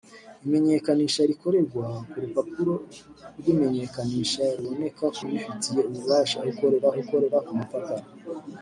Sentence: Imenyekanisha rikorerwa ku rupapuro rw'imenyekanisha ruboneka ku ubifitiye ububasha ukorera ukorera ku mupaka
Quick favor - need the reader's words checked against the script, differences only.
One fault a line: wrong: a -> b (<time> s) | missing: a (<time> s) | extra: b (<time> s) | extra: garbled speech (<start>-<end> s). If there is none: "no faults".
no faults